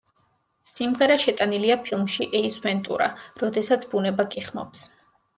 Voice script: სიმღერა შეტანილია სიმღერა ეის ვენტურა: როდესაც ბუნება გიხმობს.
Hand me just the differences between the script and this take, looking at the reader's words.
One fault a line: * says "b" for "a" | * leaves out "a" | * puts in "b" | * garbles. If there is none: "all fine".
* says "ფილმში" for "სიმღერა"